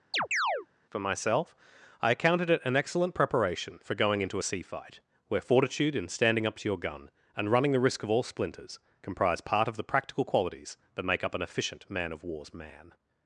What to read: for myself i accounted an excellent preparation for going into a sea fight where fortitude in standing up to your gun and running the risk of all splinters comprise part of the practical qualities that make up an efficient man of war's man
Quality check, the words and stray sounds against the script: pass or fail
fail